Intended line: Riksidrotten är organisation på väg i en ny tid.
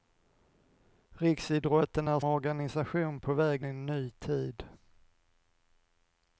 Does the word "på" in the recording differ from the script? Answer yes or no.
no